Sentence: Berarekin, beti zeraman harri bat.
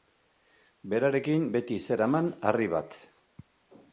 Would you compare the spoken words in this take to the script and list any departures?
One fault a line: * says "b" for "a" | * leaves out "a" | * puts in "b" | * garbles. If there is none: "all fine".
all fine